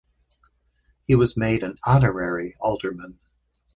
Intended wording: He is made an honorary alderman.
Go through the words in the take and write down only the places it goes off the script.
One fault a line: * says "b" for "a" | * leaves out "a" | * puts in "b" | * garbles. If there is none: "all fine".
* says "was" for "is"